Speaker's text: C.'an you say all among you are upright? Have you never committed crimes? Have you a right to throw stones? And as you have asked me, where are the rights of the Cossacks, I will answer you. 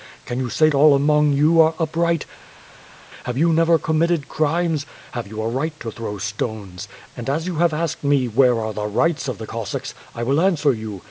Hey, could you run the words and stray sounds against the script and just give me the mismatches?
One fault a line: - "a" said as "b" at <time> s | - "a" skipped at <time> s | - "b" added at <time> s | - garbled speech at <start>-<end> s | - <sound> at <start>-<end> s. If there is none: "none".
none